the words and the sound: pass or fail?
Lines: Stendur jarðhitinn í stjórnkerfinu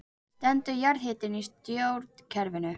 pass